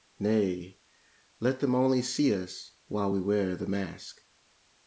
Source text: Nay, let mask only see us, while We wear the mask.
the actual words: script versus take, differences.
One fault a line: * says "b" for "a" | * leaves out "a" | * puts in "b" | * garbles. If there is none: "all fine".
* says "them" for "mask"